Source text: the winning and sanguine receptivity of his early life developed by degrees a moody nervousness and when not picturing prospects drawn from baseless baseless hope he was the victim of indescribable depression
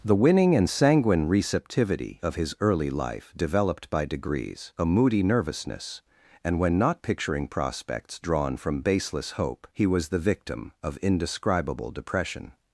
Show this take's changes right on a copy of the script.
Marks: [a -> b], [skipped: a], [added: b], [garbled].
the winning and sanguine receptivity of his early life developed by degrees a moody nervousness and when not picturing prospects drawn from baseless [skipped: baseless] hope he was the victim of indescribable depression